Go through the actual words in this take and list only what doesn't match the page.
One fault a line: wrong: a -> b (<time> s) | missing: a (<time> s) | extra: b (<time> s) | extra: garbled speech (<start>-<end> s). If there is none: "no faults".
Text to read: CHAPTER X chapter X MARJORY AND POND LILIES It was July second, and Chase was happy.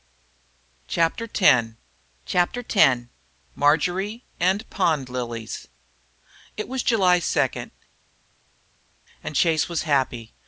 no faults